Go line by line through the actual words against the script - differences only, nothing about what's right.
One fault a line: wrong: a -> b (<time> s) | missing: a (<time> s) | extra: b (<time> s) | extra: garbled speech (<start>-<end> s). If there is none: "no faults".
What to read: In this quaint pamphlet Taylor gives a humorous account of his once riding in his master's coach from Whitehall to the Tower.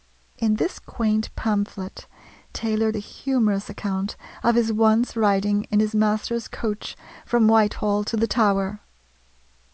missing: gives (2.9 s)